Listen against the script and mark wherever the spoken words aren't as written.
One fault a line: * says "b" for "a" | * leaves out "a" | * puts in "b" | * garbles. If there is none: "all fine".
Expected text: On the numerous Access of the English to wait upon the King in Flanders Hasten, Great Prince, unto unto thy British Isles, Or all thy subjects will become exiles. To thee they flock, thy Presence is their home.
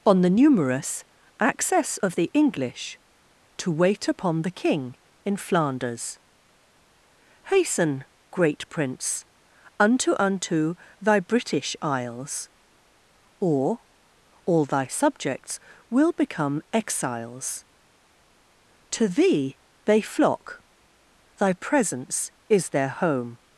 all fine